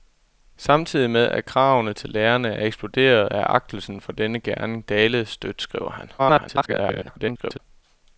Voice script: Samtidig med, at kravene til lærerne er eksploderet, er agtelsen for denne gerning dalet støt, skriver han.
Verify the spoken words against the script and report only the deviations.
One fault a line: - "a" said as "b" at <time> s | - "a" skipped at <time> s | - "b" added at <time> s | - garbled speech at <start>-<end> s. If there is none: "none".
- garbled speech at 6.2-7.6 s